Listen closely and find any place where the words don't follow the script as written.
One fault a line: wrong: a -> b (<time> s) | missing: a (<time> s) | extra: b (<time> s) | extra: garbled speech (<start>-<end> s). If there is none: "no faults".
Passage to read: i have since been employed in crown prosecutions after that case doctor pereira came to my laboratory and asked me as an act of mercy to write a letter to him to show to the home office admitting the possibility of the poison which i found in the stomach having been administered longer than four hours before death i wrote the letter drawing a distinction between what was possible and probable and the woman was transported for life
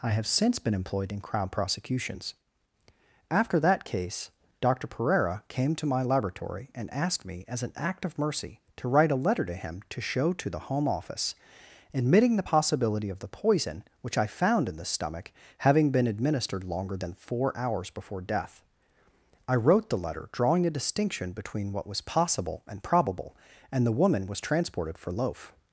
wrong: life -> loaf (25.1 s)